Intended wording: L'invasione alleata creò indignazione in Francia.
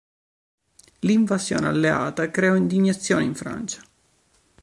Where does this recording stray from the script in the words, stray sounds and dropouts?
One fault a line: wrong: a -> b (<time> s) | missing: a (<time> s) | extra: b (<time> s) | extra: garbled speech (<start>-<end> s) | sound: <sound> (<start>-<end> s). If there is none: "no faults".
no faults